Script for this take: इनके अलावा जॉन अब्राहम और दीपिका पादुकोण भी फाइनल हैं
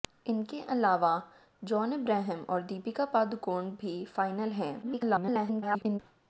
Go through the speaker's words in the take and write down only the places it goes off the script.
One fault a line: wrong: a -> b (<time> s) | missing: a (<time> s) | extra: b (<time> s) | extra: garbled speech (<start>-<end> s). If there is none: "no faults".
extra: garbled speech (4.8-6.0 s)